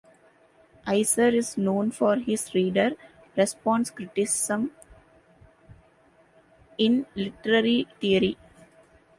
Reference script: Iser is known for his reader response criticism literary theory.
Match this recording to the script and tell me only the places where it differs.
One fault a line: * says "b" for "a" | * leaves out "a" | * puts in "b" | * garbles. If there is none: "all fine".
* puts in "in"